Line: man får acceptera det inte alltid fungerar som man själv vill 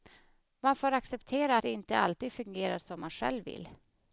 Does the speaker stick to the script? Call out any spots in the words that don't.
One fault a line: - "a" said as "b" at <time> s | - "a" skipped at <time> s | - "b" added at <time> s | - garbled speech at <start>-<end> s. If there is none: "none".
none